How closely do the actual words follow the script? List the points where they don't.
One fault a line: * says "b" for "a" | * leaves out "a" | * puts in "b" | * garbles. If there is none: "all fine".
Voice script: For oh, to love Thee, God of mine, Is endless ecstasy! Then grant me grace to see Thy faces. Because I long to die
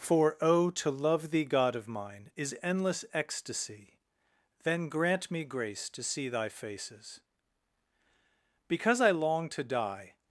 all fine